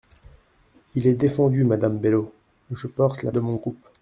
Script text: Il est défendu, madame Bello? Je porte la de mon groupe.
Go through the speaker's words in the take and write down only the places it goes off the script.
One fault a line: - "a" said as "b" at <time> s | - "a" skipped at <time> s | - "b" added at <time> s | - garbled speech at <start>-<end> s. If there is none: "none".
none